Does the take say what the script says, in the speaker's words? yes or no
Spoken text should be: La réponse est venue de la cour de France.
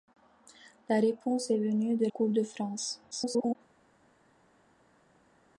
no